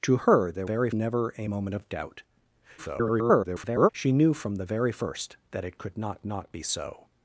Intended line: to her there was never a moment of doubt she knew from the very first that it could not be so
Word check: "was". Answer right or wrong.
wrong